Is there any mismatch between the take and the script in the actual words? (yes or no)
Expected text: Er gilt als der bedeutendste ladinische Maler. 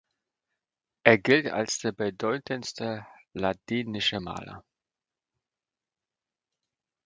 no